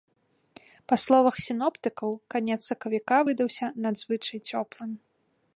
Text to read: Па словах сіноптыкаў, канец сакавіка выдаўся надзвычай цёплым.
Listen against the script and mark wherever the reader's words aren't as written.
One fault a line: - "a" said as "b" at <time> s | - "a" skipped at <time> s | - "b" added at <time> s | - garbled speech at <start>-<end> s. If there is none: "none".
none